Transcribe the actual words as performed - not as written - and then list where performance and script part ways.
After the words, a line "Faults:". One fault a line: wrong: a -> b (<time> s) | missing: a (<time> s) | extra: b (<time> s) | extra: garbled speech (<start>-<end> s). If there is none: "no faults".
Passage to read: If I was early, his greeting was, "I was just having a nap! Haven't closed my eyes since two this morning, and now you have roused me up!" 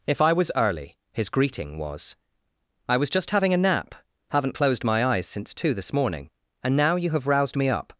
If I was early, his greeting was, "I was just having a nap! Haven't closed my eyes since two this morning, and now you have roused me up!"
Faults:
no faults